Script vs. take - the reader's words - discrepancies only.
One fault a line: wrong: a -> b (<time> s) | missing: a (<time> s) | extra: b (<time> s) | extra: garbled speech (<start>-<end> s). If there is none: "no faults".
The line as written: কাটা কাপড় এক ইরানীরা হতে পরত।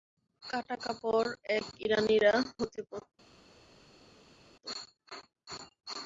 no faults